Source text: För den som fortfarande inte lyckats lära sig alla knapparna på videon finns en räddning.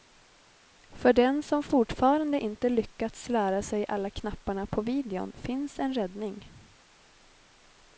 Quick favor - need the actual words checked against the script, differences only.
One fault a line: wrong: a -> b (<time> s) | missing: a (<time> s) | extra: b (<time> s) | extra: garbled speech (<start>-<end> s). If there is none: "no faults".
no faults